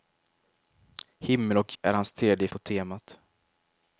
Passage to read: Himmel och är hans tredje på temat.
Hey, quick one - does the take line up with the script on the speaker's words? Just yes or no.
yes